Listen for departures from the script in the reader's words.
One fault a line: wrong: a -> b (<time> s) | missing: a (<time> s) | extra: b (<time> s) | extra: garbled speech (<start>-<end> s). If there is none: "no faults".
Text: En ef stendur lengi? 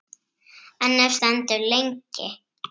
no faults